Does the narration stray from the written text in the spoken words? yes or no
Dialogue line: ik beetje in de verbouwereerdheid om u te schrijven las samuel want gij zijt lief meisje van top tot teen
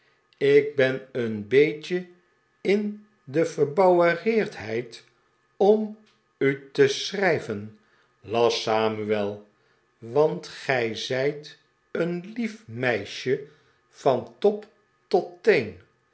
yes